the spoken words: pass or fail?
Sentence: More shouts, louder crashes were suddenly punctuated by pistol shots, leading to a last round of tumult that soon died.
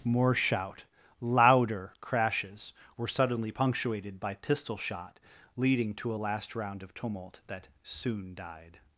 fail